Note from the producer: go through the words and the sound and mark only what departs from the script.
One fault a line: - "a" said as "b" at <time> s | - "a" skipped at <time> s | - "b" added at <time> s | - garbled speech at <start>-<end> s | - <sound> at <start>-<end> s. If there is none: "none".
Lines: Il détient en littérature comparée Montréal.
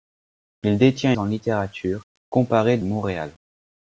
none